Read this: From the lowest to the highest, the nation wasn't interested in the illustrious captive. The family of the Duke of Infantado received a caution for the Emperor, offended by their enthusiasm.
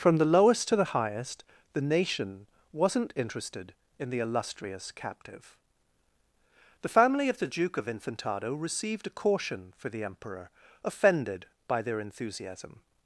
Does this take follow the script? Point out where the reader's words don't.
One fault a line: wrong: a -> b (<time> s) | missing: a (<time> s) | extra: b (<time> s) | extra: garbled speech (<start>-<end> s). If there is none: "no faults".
no faults